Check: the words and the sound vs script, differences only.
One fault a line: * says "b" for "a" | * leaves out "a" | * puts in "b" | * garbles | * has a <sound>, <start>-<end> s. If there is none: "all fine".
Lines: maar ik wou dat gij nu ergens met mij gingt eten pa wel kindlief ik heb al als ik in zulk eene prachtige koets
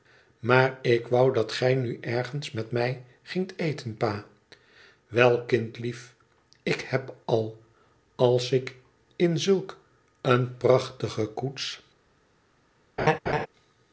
* has a laugh, 13.0-13.5 s